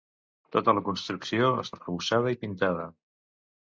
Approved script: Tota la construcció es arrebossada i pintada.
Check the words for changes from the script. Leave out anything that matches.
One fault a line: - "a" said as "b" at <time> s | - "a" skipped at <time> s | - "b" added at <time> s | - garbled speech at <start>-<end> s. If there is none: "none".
none